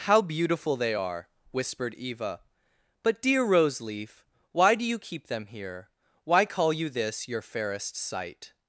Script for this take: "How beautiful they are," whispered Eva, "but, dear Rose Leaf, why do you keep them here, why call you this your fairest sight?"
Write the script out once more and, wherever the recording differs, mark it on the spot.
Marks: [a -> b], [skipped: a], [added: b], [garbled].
"How beautiful they are," whispered Eva, "but, dear Rose Leaf, why do you keep them here, why call you this your fairest sight?"